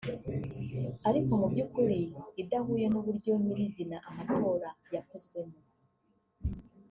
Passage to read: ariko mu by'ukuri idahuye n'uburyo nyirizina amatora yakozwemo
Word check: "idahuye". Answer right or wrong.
right